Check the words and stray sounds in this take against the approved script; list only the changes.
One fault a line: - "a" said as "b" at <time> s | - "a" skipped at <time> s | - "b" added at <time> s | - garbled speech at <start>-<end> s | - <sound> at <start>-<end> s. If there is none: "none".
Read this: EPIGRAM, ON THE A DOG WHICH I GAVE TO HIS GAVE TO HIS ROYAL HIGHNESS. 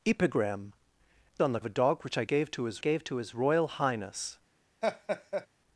- laugh at 4.8-5.5 s